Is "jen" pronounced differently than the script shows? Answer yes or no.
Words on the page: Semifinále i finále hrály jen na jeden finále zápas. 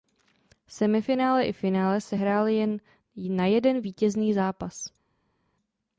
no